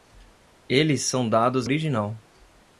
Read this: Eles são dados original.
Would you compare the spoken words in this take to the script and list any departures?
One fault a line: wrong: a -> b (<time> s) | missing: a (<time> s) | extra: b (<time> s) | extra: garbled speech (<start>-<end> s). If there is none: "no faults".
no faults